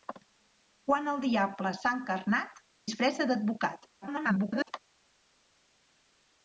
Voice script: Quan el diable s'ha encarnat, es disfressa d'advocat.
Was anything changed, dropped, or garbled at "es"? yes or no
yes